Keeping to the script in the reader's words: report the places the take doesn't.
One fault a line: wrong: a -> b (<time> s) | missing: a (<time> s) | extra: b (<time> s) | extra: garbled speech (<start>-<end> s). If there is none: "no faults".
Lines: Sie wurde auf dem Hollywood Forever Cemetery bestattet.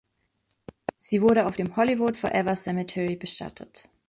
no faults